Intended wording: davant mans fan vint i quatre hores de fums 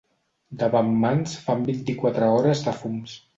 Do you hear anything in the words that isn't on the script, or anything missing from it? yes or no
no